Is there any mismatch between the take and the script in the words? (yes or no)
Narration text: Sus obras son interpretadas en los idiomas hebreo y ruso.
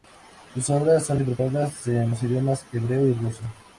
no